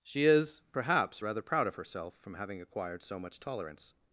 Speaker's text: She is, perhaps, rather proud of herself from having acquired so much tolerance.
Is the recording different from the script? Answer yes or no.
no